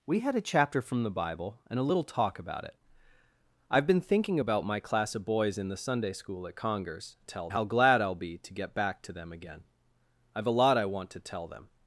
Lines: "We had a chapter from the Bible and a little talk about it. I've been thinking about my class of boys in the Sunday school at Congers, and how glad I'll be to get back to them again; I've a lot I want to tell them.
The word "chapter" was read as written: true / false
true